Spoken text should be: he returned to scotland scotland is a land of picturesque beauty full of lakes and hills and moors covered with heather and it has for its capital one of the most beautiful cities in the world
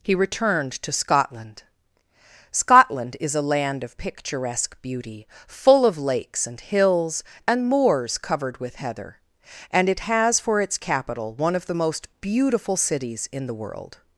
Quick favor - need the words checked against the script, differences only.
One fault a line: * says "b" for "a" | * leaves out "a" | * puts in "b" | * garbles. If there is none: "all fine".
all fine